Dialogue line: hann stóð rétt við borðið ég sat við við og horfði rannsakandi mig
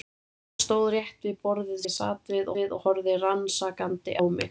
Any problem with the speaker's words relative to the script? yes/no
no